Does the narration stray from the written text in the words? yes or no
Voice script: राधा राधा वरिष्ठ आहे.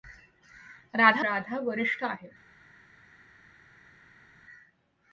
no